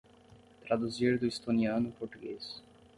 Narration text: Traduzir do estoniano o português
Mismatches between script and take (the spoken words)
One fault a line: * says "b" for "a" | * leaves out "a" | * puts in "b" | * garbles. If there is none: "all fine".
all fine